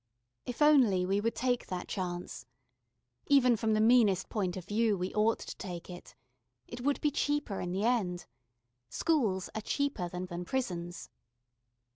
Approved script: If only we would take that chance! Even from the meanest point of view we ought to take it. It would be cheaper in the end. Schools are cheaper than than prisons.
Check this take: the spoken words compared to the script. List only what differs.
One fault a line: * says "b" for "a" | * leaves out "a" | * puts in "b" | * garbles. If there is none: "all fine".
all fine